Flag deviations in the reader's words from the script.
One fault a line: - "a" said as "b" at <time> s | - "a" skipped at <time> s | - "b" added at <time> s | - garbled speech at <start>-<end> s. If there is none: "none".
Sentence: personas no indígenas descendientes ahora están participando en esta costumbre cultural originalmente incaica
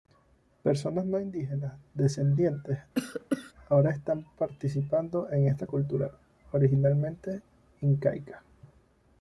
- "costumbre" skipped at 5.7 s